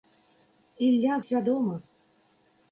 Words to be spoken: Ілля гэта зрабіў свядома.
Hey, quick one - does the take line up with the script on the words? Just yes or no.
no